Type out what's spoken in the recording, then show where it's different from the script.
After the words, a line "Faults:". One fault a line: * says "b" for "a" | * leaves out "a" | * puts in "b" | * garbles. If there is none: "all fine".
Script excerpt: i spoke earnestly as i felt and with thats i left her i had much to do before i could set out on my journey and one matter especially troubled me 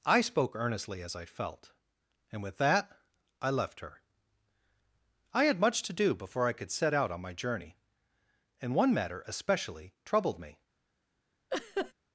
i spoke earnestly as i felt and with that i left her i had much to do before i could set out on my journey and one matter especially troubled me
Faults:
* says "that" for "thats"